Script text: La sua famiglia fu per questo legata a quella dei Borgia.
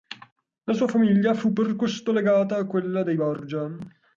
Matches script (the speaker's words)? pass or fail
pass